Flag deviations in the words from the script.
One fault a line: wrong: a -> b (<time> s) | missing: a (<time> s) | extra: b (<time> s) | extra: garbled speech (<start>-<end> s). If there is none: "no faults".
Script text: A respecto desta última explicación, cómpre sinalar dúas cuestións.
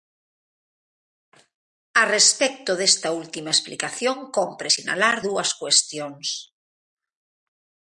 no faults